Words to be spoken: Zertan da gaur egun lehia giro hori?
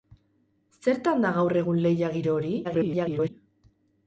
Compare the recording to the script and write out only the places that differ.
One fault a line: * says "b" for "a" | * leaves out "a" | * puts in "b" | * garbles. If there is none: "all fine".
* garbles